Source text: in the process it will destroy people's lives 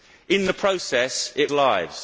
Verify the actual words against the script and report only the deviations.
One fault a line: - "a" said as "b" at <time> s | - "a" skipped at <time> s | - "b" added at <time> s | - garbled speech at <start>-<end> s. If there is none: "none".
- "will destroy people's" skipped at 1.5 s